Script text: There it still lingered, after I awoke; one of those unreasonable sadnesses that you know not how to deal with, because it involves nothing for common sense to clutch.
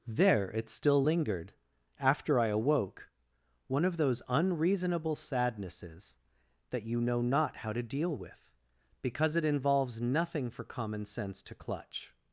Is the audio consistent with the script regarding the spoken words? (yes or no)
yes